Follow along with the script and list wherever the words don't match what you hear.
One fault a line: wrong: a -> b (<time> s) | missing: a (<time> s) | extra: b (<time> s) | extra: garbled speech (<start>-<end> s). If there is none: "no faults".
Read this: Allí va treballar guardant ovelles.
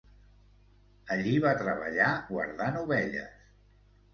no faults